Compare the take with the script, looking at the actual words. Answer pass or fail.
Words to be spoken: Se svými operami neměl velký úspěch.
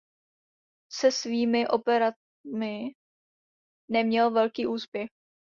pass